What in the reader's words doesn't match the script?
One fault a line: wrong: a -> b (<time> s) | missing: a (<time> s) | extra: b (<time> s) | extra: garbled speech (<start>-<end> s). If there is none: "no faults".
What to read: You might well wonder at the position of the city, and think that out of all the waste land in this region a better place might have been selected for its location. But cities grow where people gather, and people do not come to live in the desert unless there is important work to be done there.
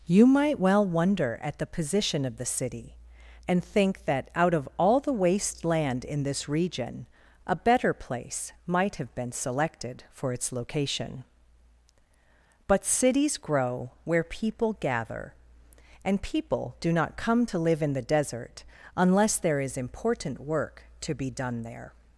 no faults